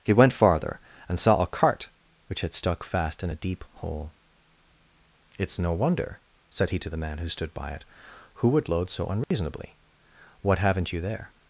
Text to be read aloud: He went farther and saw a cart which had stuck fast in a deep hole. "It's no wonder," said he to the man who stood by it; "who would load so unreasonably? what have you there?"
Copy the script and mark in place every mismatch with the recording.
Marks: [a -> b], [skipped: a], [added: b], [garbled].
He went farther and saw a cart which had stuck fast in a deep hole. "It's no wonder," said he to the man who stood by it; "who would load so unreasonably? what [have -> haven't] you there?"